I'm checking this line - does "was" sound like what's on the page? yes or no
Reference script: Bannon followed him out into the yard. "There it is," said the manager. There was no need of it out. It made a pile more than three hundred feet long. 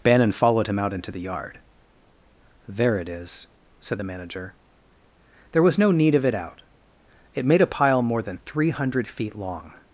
yes